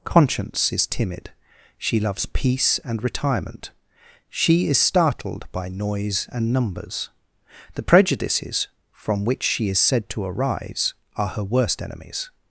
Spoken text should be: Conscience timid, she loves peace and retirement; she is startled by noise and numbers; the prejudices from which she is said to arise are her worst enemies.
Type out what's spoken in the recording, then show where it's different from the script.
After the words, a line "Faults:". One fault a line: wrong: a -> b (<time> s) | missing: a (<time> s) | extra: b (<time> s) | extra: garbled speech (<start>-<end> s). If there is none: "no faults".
Conscience is timid, she loves peace and retirement; she is startled by noise and numbers; the prejudices from which she is said to arise are her worst enemies.
Faults:
extra: is (0.7 s)